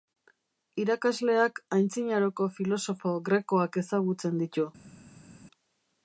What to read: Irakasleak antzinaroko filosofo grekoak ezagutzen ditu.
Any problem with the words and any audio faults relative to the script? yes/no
no